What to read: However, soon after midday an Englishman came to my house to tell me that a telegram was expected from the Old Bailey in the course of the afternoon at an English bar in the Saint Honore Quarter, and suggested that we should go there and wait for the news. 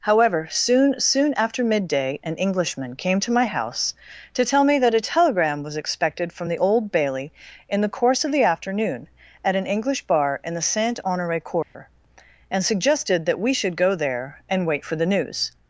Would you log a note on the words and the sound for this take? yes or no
yes